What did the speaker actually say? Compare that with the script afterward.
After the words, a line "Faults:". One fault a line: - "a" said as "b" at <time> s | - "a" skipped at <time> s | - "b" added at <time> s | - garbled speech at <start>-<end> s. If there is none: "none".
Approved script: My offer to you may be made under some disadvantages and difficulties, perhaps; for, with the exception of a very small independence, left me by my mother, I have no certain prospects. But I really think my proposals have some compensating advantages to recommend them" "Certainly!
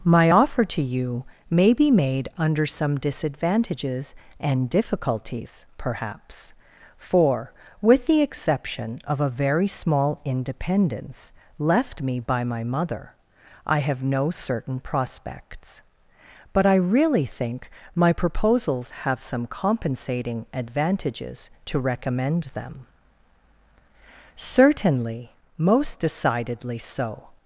My offer to you may be made under some disadvantages and difficulties, perhaps; for, with the exception of a very small independence, left me by my mother, I have no certain prospects. But I really think my proposals have some compensating advantages to recommend them" "Certainly! most decidedly so
Faults:
- "most decidedly so" added at 25.6 s